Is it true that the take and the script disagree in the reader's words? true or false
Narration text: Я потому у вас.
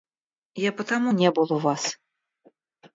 true